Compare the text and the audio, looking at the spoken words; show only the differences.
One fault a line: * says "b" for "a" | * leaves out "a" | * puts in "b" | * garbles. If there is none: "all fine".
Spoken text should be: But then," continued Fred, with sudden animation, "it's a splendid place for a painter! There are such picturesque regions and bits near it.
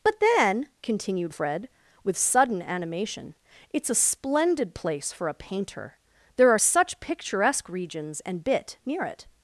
* says "bit" for "bits"